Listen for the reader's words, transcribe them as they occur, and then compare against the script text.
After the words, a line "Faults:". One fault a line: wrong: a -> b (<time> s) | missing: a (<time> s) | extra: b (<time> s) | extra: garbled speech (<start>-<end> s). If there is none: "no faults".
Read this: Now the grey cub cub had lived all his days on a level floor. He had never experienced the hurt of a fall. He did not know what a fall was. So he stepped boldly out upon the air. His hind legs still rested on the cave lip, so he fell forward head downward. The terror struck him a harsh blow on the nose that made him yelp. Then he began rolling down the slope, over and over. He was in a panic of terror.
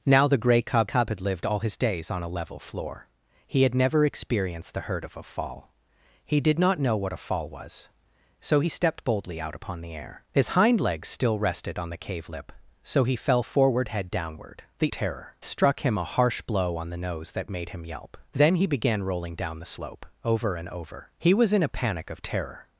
Now the grey cub cub had lived all his days on a level floor. He had never experienced the hurt of a fall. He did not know what a fall was. So he stepped boldly out upon the air. His hind legs still rested on the cave lip, so he fell forward head downward. The terror struck him a harsh blow on the nose that made him yelp. Then he began rolling down the slope, over and over. He was in a panic of terror.
Faults:
no faults